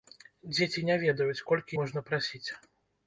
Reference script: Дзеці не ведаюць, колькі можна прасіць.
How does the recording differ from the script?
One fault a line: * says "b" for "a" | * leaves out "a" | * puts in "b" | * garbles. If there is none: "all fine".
all fine